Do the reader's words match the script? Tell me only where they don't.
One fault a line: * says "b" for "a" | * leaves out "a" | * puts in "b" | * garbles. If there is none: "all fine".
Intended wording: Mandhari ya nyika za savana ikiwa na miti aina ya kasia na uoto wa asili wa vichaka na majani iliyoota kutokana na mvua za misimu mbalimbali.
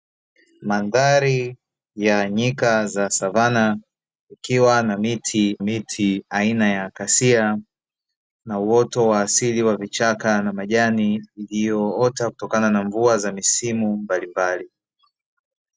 * puts in "miti"